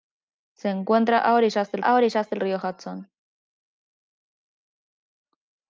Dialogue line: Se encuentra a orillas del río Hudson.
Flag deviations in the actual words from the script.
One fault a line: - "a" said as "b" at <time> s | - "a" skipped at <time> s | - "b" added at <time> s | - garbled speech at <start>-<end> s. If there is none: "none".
- "a orillas del" added at 1.8 s